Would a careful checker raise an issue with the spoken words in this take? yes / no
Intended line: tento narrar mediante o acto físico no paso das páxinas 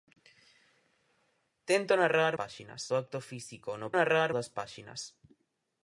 yes